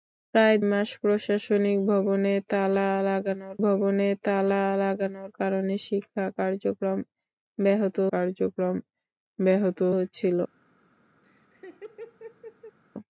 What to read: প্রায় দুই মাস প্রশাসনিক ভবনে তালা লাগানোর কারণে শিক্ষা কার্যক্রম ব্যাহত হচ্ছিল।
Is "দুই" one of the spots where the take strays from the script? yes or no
yes